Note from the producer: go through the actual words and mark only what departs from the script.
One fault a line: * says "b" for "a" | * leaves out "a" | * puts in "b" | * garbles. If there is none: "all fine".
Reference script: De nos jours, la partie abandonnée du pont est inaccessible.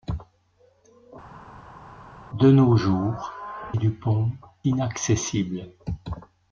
* leaves out "la partie abandonnée"
* leaves out "est"